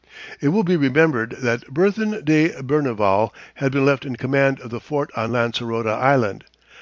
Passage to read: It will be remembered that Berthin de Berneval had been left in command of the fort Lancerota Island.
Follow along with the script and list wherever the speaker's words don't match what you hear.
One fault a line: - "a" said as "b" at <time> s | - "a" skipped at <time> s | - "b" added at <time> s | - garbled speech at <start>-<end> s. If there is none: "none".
- "on" added at 5.2 s